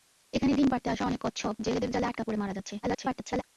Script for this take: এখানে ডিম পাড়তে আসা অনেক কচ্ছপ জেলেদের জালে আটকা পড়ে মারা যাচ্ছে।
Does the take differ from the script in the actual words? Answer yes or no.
yes